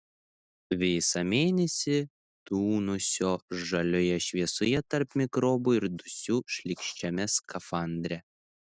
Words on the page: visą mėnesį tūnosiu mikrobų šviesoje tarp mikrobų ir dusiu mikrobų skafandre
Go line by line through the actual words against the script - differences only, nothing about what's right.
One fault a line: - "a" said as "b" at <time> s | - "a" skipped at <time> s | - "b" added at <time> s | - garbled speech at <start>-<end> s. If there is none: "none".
- "mikrobų" said as "žalioje" at 3.7 s
- "mikrobų" said as "šlykščiame" at 6.6 s